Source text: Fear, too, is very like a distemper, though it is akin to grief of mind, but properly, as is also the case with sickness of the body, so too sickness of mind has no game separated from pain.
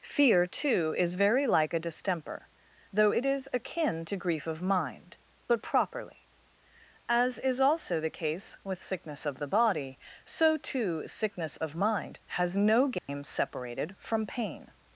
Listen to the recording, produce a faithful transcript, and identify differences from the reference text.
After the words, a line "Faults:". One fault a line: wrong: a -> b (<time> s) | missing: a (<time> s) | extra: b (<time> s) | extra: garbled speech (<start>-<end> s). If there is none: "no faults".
Fear, too, is very like a distemper, though it is akin to grief of mind, but properly, as is also the case with sickness of the body, so too sickness of mind has no game separated from pain.
Faults:
no faults